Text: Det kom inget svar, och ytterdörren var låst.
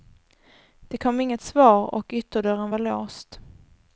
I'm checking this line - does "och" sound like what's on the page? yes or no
yes